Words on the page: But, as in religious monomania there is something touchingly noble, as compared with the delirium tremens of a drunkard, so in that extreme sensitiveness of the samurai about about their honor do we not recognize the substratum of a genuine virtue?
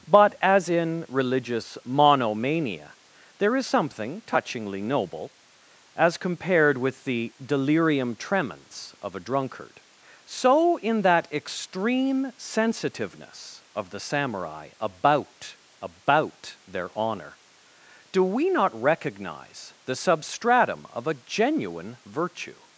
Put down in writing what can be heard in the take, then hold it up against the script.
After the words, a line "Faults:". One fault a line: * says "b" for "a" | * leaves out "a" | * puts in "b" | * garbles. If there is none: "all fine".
But, as in religious monomania there is something touchingly noble, as compared with the delirium tremens of a drunkard, so in that extreme sensitiveness of the samurai about about their honor do we not recognize the substratum of a genuine virtue?
Faults:
all fine